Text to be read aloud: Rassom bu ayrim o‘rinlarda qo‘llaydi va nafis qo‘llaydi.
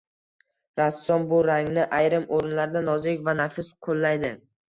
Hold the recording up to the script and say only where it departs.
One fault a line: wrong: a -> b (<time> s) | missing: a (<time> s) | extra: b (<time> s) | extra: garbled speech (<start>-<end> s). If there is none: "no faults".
extra: rangni (1.5 s)
wrong: qo‘llaydi -> nozik (2.9 s)